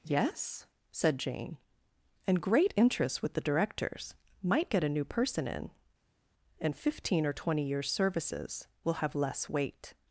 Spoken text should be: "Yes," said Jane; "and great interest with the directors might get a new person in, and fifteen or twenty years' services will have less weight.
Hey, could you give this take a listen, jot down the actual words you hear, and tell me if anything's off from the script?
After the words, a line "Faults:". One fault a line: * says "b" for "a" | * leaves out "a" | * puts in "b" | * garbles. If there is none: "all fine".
"Yes," said Jane; "and great interest with the directors might get a new person in, and fifteen or twenty years' services will have less weight.
Faults:
all fine